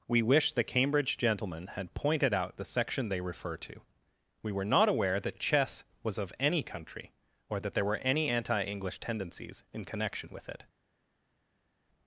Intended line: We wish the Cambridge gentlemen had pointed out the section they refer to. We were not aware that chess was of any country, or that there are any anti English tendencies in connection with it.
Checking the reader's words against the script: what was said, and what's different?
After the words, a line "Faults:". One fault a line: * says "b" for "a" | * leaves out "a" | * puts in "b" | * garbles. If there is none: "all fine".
We wish the Cambridge gentlemen had pointed out the section they refer to. We were not aware that chess was of any country, or that there were any anti English tendencies in connection with it.
Faults:
* says "were" for "are"